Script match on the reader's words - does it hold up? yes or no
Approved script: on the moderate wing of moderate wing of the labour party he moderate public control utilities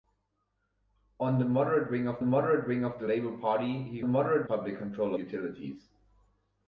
yes